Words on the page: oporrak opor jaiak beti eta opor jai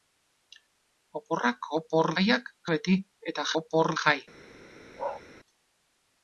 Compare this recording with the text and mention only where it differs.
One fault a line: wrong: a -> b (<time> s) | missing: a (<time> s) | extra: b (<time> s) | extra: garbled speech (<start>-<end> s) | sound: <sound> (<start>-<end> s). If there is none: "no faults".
sound: bark (5.0-5.2 s)